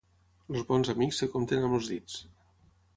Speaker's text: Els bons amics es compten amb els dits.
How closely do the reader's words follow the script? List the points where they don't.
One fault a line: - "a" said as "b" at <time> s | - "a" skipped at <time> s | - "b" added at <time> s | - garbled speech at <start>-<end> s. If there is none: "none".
none